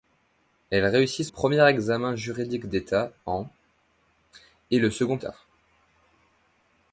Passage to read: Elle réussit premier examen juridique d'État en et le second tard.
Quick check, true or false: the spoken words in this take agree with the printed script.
true